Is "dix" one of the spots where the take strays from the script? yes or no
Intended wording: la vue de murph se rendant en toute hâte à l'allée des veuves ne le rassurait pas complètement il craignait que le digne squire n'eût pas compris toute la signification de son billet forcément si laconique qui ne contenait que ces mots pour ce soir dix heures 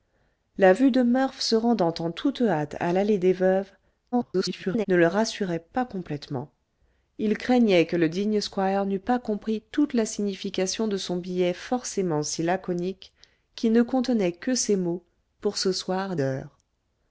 yes